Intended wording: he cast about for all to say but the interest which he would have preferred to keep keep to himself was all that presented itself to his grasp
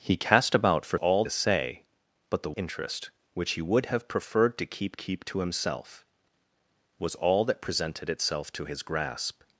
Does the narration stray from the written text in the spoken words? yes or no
no